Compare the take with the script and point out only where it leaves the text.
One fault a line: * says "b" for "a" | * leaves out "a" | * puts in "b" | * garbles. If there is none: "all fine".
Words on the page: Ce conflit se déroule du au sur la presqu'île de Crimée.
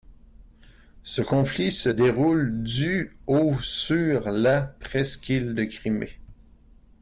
all fine